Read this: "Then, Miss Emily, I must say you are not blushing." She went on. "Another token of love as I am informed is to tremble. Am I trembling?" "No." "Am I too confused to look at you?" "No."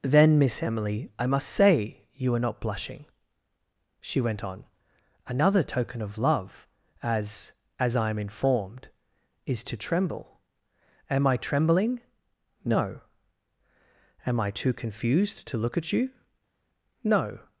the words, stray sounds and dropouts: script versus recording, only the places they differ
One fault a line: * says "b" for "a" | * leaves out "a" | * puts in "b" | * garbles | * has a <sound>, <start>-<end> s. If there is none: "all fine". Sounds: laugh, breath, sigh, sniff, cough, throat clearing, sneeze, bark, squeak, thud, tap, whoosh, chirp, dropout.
* puts in "as"